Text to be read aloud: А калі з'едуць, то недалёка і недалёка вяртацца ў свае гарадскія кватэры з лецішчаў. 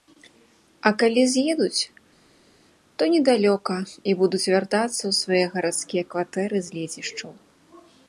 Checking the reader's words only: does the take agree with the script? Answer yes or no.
no